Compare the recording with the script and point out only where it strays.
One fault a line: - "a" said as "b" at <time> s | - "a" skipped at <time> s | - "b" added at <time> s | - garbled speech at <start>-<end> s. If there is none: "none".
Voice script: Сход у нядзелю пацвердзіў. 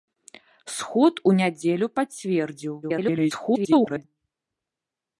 - garbled speech at 2.8-4.0 s